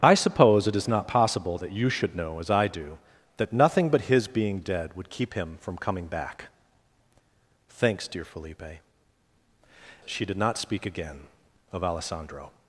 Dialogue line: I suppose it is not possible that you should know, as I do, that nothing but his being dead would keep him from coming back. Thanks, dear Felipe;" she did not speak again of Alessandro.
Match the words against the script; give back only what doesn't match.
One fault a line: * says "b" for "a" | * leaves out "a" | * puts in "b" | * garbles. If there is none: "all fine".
all fine